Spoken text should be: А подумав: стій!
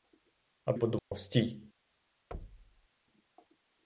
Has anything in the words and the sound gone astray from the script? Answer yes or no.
yes